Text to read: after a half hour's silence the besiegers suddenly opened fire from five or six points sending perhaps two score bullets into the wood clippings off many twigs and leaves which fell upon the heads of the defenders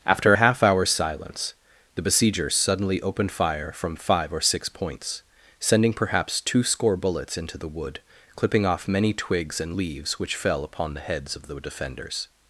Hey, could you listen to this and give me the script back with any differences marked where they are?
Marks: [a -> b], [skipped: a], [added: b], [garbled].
after a half hour's silence the besiegers suddenly opened fire from five or six points sending perhaps two score bullets into the wood [clippings -> clipping] off many twigs and leaves which fell upon the heads of the defenders